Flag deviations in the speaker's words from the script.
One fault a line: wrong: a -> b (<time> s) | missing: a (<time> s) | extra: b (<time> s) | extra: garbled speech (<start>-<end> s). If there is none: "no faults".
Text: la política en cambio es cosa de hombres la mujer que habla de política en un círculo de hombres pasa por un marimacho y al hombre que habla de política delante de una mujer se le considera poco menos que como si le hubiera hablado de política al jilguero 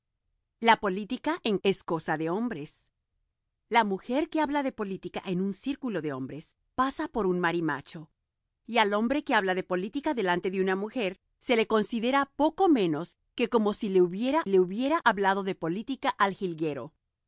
missing: cambio (1.6 s)
extra: le hubiera (14.5 s)